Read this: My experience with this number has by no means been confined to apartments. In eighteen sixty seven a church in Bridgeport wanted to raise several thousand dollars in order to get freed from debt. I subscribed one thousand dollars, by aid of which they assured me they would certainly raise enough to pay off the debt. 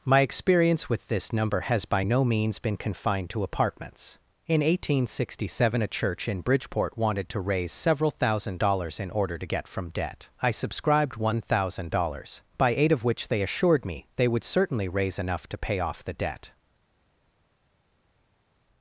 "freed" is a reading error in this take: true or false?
true